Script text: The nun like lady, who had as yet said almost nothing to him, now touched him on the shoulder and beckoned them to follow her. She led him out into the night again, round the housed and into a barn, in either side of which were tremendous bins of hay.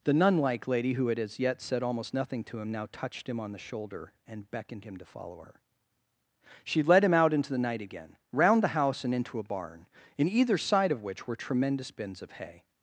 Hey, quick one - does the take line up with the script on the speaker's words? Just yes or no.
no